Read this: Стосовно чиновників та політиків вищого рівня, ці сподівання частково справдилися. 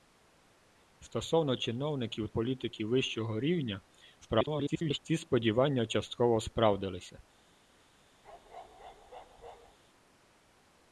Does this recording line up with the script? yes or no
no